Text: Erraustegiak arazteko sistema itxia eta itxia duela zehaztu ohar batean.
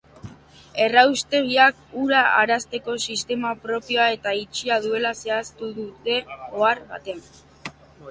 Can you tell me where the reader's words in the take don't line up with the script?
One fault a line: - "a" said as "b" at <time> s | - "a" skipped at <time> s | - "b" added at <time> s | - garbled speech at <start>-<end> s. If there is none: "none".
- "ura" added at 2.0 s
- "itxia" said as "propioa" at 3.7 s
- "dute" added at 5.8 s